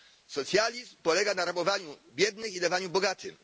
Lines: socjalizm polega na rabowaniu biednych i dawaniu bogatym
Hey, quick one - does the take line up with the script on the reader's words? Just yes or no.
yes